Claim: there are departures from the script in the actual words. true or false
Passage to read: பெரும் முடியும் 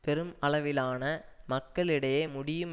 true